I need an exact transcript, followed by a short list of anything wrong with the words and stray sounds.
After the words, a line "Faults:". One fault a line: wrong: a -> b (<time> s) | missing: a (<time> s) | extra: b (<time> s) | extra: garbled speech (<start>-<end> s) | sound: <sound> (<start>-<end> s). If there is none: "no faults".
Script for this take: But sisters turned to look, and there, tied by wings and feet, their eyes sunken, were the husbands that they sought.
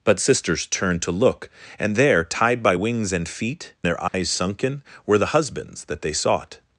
But sisters turned to look, and there, tied by wings and feet, their eyes sunken, were the husbands that they sought.
Faults:
sound: dropout (4.1-4.1 s)